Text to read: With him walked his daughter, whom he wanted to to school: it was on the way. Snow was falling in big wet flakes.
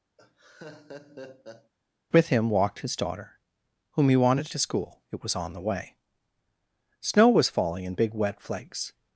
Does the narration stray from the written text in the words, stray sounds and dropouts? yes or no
yes